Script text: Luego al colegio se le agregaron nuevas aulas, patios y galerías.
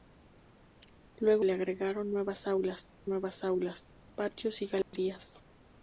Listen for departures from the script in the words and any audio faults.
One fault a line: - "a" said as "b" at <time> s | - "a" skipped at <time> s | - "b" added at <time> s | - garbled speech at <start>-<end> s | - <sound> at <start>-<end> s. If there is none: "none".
- "al colegio se le agregaron" said as "le agregaron nuevas aulas" at 1.4 s
- dropout at 4.8-4.9 s